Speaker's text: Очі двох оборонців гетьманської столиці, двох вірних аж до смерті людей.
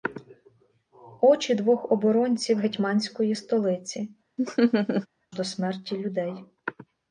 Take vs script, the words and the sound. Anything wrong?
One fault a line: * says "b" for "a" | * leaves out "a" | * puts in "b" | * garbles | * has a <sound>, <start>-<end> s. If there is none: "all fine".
* leaves out "двох вірних аж"
* has a laugh, 4.4-5.1 s